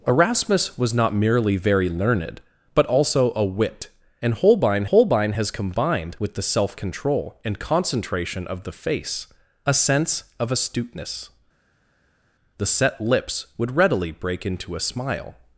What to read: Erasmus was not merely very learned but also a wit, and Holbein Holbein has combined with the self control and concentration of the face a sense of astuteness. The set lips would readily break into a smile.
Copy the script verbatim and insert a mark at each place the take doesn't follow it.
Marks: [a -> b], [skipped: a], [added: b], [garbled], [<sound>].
Erasmus was not merely very learned but also a wit, and Holbein Holbein has combined with the self control and concentration of the face a sense of astuteness. The set lips would readily break into a smile.